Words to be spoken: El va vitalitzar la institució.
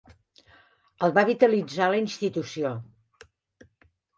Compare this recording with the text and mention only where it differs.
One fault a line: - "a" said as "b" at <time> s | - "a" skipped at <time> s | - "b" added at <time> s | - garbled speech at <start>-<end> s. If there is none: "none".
none